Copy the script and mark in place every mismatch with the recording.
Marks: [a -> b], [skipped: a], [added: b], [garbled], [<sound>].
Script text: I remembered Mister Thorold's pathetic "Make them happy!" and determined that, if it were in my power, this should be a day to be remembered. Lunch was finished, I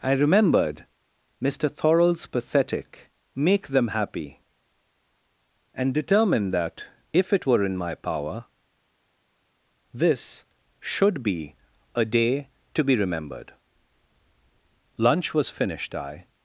I remembered Mister Thorold's pathetic "Make them happy!" and determined that, if it were in my power, this should be a day to be remembered. Lunch was finished, I